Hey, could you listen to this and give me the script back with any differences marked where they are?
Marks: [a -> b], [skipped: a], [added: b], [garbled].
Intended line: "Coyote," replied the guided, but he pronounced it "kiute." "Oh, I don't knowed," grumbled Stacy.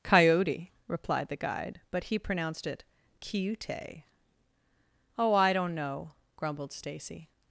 "Coyote," replied the [guided, -> guide] but he pronounced it "kiute." "Oh, I don't [knowed," -> know] grumbled Stacy.